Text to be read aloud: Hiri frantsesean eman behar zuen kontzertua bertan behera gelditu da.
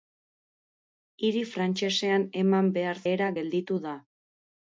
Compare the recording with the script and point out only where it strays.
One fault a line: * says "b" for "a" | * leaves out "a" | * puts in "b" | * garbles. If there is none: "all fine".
* leaves out "zuen kontzertua bertan"